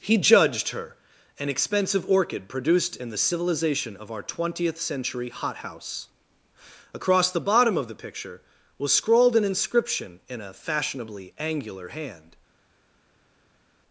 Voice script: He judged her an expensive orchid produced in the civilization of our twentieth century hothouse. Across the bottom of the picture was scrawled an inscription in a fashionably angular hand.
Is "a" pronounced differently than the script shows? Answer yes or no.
no